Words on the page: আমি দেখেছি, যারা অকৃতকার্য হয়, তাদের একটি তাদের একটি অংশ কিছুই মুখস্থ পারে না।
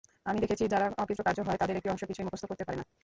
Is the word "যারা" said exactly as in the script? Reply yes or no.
yes